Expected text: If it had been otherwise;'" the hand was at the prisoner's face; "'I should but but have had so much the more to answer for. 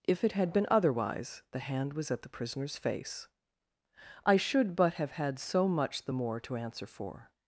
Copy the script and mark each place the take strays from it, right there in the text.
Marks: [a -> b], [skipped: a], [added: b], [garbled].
If it had been otherwise;'" the hand was at the prisoner's face; "'I should but [skipped: but] have had so much the more to answer for.